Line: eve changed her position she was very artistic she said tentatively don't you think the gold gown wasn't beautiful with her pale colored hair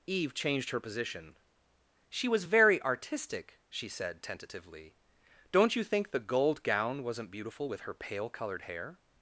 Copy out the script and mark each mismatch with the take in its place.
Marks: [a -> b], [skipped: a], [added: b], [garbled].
eve changed her position she was very artistic she said tentatively don't you think the gold gown wasn't beautiful with her pale colored hair